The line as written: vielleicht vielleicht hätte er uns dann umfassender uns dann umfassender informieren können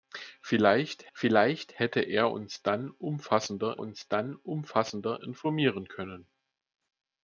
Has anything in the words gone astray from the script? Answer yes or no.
no